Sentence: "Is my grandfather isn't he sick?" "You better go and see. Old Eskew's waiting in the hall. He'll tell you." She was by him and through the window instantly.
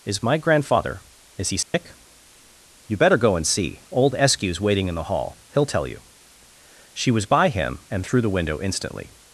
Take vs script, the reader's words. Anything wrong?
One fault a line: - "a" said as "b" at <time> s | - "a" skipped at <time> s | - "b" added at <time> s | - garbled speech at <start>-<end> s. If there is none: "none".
- "isn't" said as "is" at 1.4 s